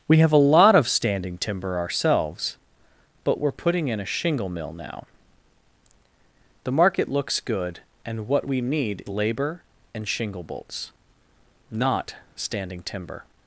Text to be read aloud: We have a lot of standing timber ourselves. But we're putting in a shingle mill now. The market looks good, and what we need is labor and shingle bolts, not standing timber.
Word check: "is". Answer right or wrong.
wrong